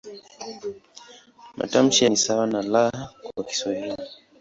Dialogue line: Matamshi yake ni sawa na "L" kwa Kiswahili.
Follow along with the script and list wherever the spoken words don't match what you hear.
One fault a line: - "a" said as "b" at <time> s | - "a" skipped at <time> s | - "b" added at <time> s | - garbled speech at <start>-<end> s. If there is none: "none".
- "yake" skipped at 2.0 s